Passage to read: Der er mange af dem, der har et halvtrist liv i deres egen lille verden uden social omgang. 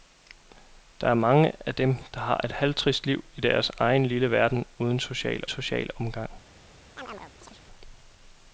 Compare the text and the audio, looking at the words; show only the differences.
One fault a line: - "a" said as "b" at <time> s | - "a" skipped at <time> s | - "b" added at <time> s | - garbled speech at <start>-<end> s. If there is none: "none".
- "social" added at 5.5 s